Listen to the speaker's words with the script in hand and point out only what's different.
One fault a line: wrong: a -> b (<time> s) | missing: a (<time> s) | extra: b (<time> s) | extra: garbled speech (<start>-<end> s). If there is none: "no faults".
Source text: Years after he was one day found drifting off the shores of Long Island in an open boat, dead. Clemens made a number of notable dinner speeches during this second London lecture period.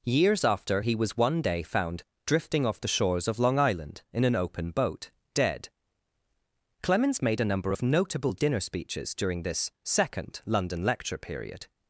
no faults